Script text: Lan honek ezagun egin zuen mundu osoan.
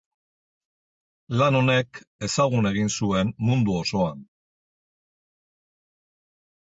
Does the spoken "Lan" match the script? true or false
true